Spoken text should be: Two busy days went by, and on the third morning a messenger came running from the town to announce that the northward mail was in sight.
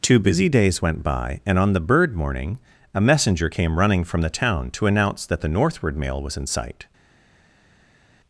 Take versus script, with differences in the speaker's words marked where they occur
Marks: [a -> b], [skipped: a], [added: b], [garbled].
Two busy days went by, and on the [third -> bird] morning a messenger came running from the town to announce that the northward mail was in sight.